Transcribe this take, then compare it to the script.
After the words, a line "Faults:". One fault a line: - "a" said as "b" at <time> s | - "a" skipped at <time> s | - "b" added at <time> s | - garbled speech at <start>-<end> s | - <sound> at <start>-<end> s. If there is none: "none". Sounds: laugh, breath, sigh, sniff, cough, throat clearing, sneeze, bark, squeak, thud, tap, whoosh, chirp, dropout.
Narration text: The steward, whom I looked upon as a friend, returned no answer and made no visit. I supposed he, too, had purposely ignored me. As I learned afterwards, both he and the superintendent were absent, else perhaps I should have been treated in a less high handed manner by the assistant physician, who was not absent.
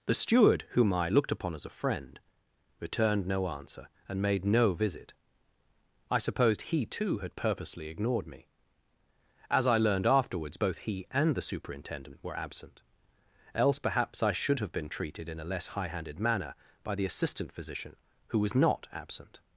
The steward, whom I looked upon as a friend, returned no answer and made no visit. I supposed he, too, had purposely ignored me. As I learned afterwards, both he and the superintendent were absent, else perhaps I should have been treated in a less high handed manner by the assistant physician, who was not absent.
Faults:
none